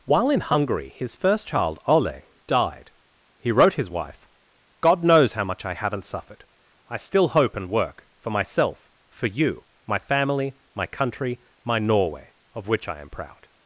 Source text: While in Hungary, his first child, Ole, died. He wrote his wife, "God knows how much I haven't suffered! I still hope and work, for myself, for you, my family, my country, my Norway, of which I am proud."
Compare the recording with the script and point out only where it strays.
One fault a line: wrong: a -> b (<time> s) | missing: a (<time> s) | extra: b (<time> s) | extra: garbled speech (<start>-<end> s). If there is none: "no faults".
no faults